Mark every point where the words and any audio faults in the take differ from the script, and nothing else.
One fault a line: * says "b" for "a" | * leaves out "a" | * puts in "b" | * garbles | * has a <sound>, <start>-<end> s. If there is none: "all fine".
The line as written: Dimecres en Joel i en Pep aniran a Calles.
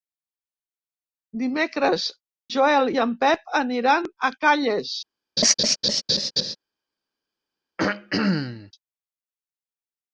* leaves out "en"
* has a laugh, 5.4-6.6 s
* has a throat clearing, 7.8-8.7 s